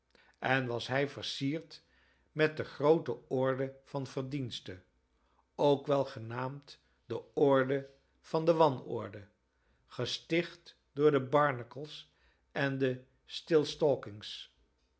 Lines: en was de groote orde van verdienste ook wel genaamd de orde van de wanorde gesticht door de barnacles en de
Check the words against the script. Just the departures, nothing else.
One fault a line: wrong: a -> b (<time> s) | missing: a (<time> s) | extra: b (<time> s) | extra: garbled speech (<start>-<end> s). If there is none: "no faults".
extra: hij versierd met (0.9 s)